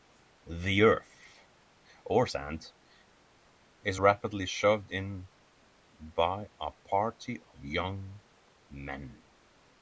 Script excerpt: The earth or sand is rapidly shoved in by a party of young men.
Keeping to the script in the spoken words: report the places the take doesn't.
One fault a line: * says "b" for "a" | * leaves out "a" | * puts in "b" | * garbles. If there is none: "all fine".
all fine